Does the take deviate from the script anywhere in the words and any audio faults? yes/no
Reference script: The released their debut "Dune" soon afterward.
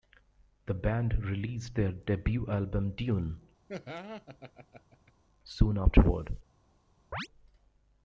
yes